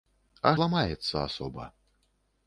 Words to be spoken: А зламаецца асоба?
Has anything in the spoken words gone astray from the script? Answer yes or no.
no